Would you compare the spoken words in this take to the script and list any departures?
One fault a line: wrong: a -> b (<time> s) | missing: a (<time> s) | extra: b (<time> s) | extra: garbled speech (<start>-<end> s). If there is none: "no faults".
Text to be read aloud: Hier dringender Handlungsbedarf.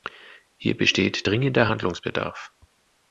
extra: besteht (0.8 s)